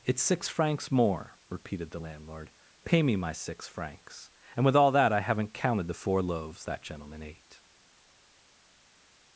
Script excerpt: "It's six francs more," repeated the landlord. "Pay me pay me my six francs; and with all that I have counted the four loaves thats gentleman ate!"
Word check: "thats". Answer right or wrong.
wrong